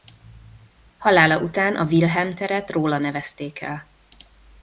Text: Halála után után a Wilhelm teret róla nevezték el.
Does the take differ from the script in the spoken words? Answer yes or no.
yes